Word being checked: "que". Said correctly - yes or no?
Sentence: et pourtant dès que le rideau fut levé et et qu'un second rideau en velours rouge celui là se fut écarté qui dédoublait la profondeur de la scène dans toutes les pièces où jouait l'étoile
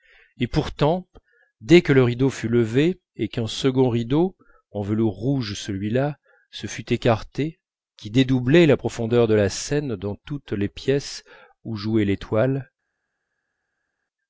yes